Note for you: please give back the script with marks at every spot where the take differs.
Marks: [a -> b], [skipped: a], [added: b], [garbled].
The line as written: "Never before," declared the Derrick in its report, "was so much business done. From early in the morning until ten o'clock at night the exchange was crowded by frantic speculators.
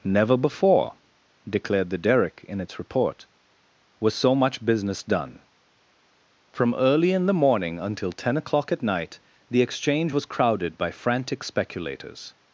"Never before," declared the Derrick in its report, "was so much business done. From early in the morning until ten o'clock at night the exchange was crowded by frantic speculators.